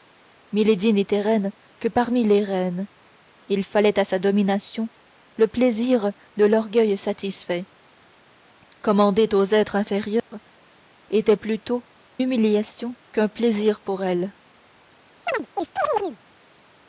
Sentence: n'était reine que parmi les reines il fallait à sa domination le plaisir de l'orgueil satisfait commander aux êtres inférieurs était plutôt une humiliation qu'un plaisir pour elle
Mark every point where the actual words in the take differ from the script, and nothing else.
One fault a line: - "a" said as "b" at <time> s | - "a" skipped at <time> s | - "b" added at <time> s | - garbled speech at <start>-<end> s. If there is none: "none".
- "une" skipped at 11.8 s